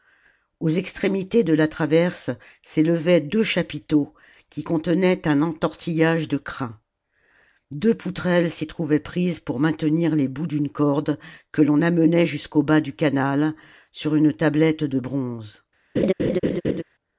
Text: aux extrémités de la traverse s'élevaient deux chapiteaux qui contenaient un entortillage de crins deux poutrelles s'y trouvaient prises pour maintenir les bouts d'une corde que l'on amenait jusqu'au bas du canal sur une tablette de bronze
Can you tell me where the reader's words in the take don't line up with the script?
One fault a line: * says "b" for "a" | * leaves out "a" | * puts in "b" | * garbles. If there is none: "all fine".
all fine